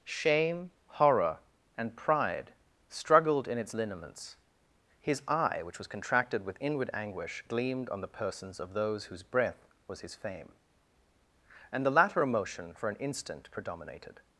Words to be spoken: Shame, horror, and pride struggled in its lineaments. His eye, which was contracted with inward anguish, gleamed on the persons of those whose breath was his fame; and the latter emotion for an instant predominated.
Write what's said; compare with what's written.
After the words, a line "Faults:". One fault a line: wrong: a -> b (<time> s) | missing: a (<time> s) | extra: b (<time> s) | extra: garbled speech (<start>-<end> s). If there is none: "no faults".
Shame, horror, and pride struggled in its lineaments. His eye, which was contracted with inward anguish, gleamed on the persons of those whose breath was his fame; and the latter emotion for an instant predominated.
Faults:
no faults